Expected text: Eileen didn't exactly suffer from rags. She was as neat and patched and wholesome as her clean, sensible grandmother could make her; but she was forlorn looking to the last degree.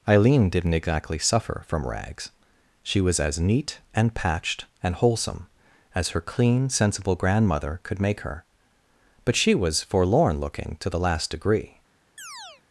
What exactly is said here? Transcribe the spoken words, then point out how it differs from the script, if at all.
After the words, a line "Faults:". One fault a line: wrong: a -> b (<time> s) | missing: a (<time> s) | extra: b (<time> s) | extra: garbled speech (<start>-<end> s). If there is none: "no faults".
Eileen didn't exactly suffer from rags. She was as neat and patched and wholesome as her clean, sensible grandmother could make her; but she was forlorn looking to the last degree.
Faults:
no faults